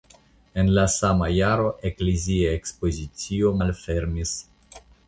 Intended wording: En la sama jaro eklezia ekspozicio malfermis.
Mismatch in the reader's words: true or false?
false